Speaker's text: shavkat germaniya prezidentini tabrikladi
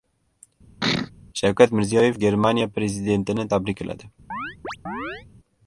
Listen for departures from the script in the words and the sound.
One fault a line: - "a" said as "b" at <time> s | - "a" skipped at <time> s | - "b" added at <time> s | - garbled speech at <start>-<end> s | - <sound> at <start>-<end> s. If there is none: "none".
- sneeze at 0.8-1.1 s
- "mirziyoyev" added at 1.7 s
- chirp at 4.3-5.3 s